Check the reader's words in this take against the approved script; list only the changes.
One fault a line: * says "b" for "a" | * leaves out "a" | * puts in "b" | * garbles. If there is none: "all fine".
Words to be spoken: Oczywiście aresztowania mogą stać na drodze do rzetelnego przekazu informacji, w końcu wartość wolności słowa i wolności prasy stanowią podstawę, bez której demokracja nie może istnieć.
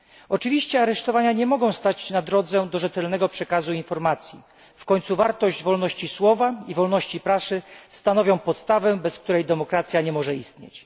* puts in "nie"